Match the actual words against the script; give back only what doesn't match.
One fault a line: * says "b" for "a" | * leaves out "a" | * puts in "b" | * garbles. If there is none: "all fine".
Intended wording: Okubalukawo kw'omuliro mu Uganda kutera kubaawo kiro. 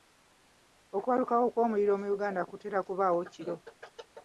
all fine